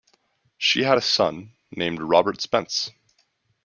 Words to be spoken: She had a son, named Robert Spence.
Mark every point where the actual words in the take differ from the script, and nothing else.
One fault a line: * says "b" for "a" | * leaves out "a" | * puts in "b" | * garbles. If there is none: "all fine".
all fine